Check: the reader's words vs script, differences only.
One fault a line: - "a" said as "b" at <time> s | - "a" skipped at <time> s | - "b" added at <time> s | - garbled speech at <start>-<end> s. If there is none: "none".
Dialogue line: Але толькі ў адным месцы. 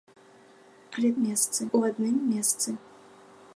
- "толькі" said as "месцы" at 1.3 s